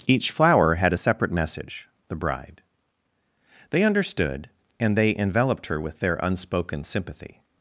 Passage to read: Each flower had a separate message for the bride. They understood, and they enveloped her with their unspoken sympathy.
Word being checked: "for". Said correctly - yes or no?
no